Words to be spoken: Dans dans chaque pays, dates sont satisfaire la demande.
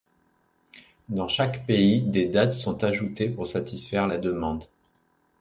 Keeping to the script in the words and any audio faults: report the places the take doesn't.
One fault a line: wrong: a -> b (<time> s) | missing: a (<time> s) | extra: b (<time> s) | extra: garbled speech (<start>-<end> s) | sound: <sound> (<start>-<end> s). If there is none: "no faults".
missing: dans (1.3 s)
extra: des (2.0 s)
extra: ajoutées pour (2.8 s)